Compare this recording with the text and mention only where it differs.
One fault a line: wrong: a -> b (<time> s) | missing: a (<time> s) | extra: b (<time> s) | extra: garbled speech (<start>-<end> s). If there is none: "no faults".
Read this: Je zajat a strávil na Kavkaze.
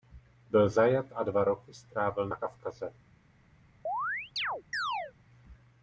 wrong: Je -> Byl (0.5 s)
extra: dva roky (1.2 s)